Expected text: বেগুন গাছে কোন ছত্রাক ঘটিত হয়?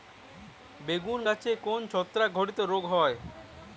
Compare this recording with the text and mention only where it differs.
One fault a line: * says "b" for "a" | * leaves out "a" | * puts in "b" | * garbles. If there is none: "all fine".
* puts in "রোগ"